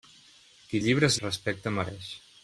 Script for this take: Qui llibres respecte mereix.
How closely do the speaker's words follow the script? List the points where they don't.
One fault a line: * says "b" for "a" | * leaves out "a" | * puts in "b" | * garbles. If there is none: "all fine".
all fine